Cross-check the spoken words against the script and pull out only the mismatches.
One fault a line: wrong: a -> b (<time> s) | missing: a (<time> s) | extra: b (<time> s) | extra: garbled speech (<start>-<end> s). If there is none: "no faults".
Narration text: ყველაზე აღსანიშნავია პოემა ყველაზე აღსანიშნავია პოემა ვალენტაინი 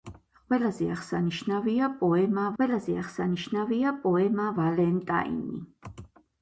no faults